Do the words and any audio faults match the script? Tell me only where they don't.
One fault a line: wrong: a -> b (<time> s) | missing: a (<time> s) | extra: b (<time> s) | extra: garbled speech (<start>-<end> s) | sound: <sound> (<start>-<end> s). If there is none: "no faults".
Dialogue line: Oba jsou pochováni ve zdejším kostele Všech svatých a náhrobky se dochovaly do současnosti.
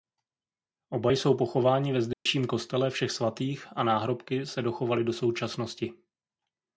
sound: dropout (2.1-2.3 s)